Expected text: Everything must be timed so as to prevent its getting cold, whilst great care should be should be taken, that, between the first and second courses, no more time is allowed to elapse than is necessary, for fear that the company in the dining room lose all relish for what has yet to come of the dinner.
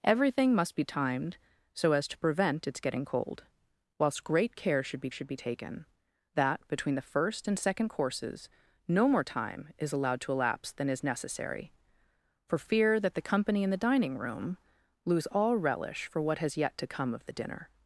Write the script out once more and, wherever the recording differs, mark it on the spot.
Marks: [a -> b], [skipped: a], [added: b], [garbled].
Everything must be timed so as to prevent its getting cold, whilst great care should be should be taken, that, between the first and second courses, no more time is allowed to elapse than is necessary, for fear that the company in the dining room lose all relish for what has yet to come of the dinner.